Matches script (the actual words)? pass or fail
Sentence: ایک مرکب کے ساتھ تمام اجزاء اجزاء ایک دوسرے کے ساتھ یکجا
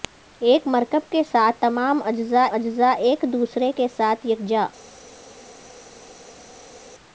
pass